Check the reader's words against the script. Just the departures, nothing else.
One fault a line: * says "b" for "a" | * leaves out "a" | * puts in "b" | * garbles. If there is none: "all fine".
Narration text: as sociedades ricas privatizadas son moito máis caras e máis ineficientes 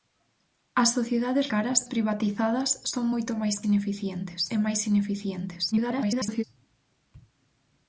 * says "caras" for "ricas"
* says "ineficientes" for "caras"
* garbles